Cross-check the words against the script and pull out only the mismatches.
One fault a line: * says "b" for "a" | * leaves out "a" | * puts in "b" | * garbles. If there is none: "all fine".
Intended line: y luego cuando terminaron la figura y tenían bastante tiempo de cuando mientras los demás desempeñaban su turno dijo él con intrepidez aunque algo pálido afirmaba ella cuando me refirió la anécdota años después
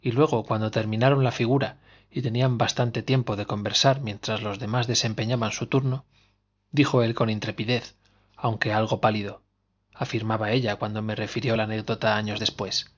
* says "conversar" for "cuando"